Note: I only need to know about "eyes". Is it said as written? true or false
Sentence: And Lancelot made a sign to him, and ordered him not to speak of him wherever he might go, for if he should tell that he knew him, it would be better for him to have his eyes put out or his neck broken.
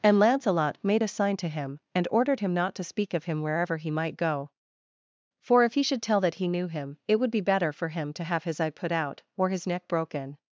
false